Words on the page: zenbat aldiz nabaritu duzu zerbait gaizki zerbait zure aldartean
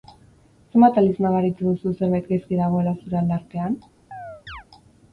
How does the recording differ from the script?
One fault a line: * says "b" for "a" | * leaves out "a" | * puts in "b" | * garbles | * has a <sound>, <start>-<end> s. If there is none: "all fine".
* says "dagoela" for "zerbait"
* has a chirp, 4.1-4.6 s